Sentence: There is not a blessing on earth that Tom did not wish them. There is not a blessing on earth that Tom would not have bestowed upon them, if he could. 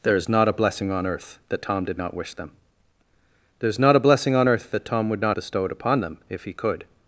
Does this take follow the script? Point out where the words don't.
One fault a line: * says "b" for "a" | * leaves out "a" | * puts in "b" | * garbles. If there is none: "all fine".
* leaves out "have"